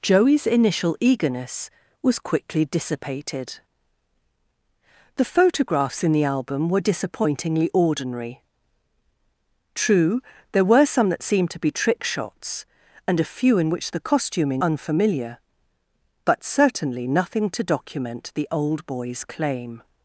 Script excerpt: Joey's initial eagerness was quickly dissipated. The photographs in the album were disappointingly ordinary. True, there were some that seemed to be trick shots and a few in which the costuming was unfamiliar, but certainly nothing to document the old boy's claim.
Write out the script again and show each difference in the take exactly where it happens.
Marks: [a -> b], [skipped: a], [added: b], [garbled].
Joey's initial eagerness was quickly dissipated. The photographs in the album were disappointingly ordinary. True, there were some that seemed to be trick shots and a few in which the costuming [skipped: was] unfamiliar, but certainly nothing to document the old boy's claim.